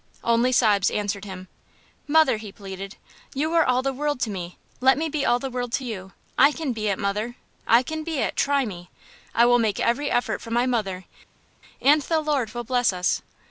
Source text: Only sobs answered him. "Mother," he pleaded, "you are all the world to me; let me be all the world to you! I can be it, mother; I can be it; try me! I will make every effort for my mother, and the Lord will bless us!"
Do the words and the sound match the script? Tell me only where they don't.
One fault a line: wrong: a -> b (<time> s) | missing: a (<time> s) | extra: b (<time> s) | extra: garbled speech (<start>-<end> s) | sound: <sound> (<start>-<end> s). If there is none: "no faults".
no faults